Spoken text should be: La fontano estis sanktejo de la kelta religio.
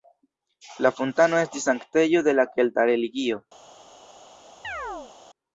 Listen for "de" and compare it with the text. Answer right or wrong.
right